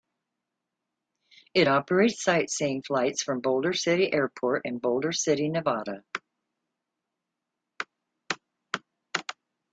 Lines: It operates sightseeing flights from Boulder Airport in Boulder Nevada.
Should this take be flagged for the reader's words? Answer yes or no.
yes